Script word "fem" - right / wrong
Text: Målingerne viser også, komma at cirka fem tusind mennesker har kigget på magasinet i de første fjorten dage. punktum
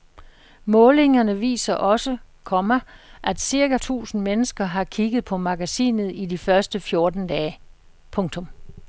wrong